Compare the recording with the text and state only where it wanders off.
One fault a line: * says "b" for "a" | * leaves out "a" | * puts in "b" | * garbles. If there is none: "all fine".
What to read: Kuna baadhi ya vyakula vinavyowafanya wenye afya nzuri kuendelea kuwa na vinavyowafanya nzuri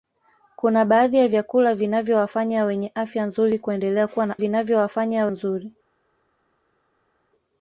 all fine